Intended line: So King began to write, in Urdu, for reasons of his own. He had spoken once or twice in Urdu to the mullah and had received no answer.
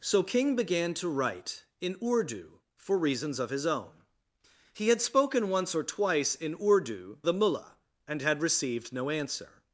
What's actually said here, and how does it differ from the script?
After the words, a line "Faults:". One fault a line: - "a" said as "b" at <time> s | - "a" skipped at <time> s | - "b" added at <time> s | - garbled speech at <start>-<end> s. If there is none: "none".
So King began to write, in Urdu, for reasons of his own. He had spoken once or twice in Urdu the mullah and had received no answer.
Faults:
- "to" skipped at 7.2 s